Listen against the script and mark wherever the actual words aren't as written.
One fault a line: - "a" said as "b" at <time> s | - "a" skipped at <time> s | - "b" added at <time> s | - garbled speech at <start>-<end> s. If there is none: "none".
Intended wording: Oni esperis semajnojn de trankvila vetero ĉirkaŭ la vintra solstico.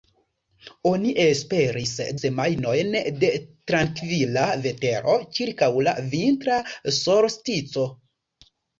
none